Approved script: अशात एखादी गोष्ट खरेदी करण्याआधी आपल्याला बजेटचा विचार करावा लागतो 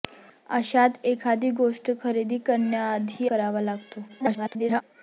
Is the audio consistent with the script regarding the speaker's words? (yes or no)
no